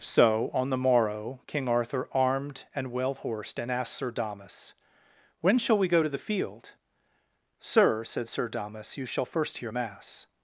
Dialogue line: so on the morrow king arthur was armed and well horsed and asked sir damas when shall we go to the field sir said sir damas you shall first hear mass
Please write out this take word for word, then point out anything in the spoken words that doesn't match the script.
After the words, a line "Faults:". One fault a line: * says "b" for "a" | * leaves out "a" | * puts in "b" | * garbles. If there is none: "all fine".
so on the morrow king arthur armed and well horsed and asked sir damas when shall we go to the field sir said sir damas you shall first hear mass
Faults:
* leaves out "was"